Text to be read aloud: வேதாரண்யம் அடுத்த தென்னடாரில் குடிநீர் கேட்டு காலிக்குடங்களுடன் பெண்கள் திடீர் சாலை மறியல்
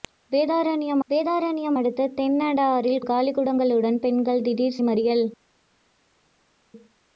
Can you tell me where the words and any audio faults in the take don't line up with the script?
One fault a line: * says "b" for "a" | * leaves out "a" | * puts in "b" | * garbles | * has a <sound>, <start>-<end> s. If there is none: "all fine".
* puts in "வேதாரண்யம்"
* leaves out "குடிநீர் கேட்டு"
* leaves out "சாலை"